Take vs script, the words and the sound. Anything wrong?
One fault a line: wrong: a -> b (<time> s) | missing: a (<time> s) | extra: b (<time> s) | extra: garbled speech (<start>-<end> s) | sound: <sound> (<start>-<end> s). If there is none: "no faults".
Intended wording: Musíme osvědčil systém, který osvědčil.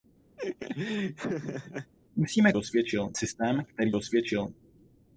sound: laugh (0.4-1.9 s)